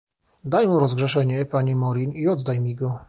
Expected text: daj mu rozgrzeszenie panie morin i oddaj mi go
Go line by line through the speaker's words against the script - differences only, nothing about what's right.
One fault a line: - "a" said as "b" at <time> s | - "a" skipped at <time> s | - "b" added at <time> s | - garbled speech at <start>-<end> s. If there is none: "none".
none